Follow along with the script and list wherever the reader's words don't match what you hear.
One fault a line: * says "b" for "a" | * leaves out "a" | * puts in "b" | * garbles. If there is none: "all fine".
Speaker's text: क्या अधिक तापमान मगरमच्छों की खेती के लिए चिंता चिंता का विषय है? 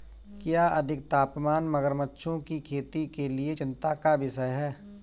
* leaves out "चिंता"